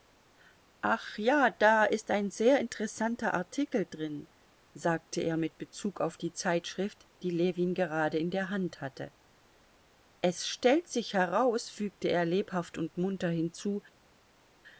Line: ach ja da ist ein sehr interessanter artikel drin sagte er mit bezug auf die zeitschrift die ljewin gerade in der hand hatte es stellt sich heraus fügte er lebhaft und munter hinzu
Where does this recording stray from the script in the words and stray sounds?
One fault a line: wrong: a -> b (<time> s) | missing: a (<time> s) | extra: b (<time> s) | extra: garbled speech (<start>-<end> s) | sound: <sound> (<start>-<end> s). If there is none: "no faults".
no faults